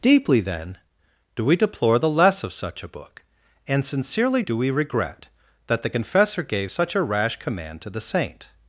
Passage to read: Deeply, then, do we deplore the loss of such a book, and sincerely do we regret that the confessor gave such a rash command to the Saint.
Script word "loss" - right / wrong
wrong